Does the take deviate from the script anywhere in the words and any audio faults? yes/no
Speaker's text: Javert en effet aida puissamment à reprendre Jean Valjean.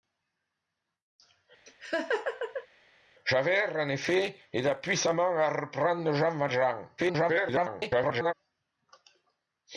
yes